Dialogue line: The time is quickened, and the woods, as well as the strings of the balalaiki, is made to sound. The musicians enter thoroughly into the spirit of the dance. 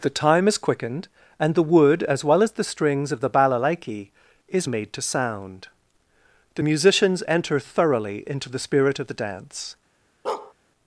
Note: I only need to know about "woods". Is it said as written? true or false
false